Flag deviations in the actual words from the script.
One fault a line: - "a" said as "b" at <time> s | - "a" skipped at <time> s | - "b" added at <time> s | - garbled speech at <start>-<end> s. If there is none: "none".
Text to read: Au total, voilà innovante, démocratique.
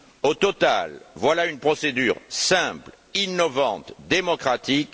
- "une procédure simple" added at 1.5 s